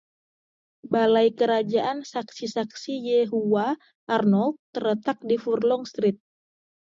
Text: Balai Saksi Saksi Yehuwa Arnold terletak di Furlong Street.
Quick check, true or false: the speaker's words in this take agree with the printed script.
false